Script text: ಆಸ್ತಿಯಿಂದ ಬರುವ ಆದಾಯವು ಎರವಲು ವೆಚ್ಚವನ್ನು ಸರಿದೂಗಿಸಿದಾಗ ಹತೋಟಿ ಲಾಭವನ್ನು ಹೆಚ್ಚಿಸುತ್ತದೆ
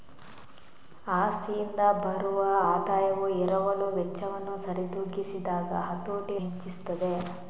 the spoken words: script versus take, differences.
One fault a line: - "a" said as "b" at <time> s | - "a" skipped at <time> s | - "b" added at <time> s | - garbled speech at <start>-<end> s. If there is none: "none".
- "ಲಾಭವನ್ನು" skipped at 6.4 s